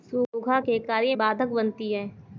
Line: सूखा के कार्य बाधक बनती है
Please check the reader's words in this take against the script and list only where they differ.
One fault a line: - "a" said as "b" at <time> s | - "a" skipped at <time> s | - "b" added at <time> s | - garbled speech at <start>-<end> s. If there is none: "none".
none